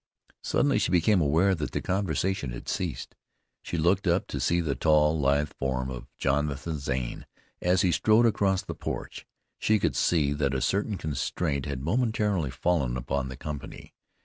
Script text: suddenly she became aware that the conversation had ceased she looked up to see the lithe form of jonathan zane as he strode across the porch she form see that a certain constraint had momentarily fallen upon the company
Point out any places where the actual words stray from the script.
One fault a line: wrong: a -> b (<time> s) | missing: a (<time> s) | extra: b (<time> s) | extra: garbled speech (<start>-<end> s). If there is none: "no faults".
extra: tall (4.7 s)
wrong: form -> could (9.8 s)